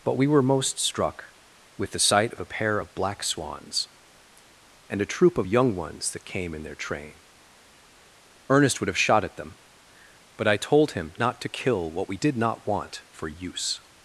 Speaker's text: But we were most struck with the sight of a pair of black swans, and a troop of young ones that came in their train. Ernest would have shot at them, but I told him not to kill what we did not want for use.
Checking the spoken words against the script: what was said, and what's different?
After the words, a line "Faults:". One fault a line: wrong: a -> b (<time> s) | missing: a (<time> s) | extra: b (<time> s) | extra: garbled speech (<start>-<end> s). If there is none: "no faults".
But we were most struck with the sight of a pair of black swans, and a troop of young ones that came in their train. Ernest would have shot at them, but I told him not to kill what we did not want for use.
Faults:
no faults